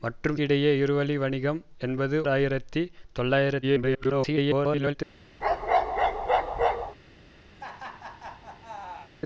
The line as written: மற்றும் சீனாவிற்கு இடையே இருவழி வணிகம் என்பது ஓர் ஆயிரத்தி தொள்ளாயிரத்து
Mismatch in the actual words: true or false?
true